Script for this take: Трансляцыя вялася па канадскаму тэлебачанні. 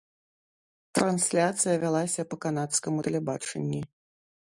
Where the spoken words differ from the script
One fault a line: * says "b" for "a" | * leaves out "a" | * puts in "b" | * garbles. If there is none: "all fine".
all fine